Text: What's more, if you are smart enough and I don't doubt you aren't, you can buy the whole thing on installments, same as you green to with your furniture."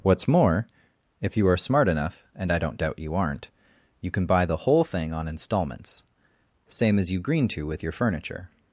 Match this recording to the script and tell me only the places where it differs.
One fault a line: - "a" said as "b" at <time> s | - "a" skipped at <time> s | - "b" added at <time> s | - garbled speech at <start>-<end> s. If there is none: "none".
none